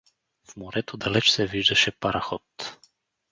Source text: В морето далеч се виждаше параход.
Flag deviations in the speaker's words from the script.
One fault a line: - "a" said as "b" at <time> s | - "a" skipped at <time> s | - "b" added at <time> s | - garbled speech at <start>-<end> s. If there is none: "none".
none